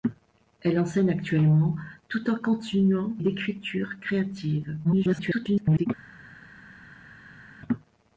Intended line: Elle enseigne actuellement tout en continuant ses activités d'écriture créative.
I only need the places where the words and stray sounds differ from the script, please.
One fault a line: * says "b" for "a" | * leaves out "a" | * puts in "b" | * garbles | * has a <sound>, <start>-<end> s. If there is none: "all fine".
* leaves out "ses activités"
* garbles